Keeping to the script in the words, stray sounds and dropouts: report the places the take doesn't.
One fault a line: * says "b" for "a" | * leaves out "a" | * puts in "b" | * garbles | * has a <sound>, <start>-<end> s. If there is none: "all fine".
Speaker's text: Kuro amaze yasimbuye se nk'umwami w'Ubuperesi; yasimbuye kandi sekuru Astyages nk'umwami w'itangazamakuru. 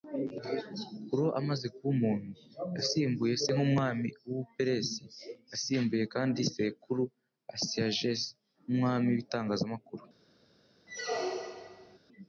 * puts in "kuba umuntu"
* has a squeak, 10.9-12.0 s